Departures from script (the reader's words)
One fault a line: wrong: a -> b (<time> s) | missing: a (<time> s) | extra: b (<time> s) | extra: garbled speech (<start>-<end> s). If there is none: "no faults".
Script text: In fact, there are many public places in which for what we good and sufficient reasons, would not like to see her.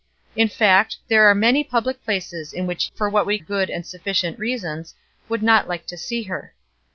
no faults